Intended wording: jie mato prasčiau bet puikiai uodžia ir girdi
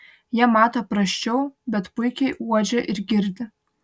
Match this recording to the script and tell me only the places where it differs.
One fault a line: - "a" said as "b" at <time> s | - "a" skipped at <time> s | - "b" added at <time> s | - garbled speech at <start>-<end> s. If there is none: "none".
none